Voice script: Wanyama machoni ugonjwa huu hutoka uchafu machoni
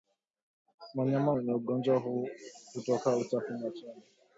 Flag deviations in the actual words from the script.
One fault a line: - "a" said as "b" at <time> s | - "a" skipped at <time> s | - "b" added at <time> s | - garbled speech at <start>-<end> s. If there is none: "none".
- "machoni" said as "wenye" at 1.3 s